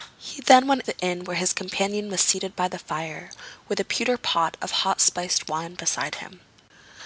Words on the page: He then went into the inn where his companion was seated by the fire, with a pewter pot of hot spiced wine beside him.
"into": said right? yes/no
no